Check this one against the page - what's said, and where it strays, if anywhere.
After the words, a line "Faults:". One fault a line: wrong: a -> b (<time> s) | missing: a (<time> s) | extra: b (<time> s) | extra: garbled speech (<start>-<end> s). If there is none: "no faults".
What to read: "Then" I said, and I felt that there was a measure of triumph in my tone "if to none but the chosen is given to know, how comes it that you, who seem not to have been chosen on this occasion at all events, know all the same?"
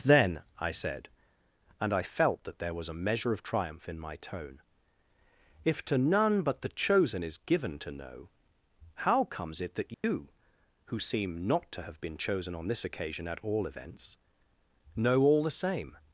"Then" I said, and I felt that there was a measure of triumph in my tone "if to none but the chosen is given to know, how comes it that you, who seem not to have been chosen on this occasion at all events, know all the same?"
Faults:
no faults